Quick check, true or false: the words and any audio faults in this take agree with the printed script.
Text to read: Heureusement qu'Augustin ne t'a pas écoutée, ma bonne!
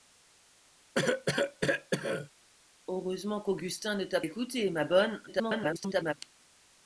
false